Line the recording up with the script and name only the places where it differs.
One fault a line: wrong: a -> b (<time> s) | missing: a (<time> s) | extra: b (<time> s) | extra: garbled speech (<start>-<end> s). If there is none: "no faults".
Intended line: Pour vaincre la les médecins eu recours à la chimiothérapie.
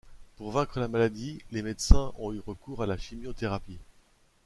extra: maladie (0.9 s)
extra: ont (2.2 s)